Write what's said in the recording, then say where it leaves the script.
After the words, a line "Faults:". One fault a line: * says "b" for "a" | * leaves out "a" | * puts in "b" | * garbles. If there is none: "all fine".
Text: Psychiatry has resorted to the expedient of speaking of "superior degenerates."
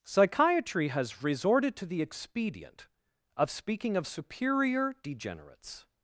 Psychiatry has resorted to the expedient of speaking of "superior degenerates."
Faults:
all fine